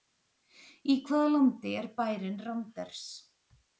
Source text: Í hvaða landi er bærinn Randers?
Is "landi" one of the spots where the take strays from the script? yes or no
no